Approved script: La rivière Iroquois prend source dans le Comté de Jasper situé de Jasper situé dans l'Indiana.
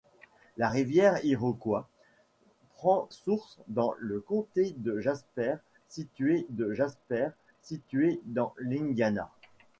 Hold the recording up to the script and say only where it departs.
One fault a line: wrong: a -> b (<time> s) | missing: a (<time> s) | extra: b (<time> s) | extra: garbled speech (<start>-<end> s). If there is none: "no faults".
no faults